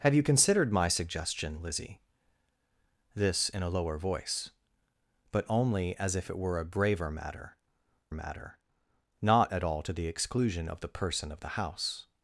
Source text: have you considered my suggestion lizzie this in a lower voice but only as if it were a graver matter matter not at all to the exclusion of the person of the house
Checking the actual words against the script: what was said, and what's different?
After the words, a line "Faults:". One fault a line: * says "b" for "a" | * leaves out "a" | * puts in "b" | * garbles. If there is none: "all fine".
have you considered my suggestion lizzie this in a lower voice but only as if it were a graver matter matter not at all to the exclusion of the person of the house
Faults:
all fine